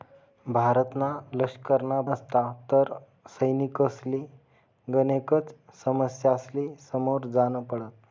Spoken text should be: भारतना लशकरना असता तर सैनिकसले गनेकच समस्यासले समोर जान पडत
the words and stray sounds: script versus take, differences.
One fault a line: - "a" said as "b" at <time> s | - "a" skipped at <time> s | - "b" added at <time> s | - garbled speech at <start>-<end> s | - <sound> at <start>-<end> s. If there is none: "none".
none